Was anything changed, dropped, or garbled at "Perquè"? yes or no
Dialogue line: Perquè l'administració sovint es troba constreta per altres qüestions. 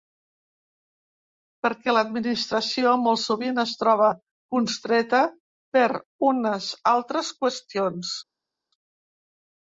no